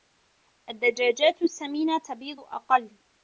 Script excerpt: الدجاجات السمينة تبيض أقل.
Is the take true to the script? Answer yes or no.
yes